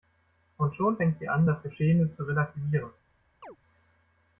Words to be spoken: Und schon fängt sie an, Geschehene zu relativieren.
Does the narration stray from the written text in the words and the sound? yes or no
yes